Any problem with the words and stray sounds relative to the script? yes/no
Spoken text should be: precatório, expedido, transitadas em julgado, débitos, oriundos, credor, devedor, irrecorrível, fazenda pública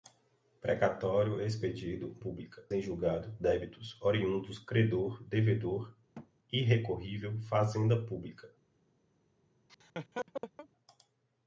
yes